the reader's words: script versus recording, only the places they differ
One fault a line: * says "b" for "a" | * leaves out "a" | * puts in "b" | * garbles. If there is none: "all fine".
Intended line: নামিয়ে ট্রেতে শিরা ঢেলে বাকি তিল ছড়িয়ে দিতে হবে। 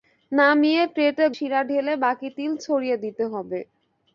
all fine